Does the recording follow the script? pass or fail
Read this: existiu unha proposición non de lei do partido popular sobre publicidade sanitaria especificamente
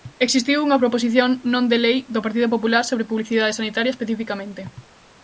pass